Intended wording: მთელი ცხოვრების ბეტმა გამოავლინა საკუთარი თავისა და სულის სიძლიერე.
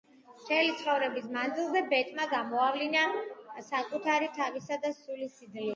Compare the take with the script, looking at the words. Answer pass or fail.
fail